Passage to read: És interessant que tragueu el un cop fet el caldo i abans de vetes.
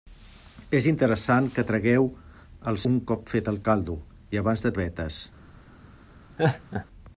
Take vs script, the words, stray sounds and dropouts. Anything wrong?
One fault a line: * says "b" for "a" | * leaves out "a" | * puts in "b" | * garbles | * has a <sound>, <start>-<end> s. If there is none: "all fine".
* has a laugh, 6.4-6.9 s